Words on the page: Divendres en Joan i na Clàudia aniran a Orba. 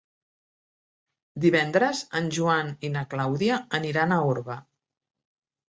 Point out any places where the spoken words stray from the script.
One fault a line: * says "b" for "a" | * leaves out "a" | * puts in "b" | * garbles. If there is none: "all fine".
all fine